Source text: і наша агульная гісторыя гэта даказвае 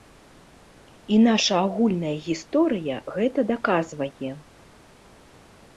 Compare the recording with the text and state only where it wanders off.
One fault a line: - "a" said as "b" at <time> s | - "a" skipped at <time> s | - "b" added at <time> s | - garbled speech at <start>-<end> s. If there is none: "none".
none